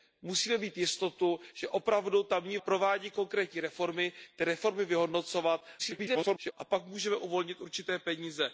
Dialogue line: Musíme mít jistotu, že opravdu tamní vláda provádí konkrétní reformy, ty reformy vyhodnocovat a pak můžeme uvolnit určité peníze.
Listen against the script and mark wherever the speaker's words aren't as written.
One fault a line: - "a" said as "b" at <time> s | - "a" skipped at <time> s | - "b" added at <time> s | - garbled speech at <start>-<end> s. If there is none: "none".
- "vláda" skipped at 2.6 s
- garbled speech at 5.8-6.5 s